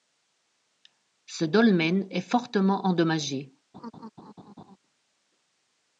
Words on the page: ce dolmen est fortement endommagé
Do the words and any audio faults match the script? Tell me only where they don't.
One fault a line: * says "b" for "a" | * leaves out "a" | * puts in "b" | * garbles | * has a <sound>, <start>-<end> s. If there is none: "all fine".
* has a laugh, 3.7-4.8 s